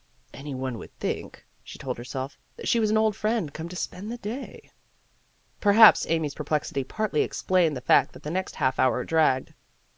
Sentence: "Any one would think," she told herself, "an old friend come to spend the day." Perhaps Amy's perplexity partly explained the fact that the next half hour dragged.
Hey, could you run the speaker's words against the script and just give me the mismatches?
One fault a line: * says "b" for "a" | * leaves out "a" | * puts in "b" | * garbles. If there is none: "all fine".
* puts in "that she was"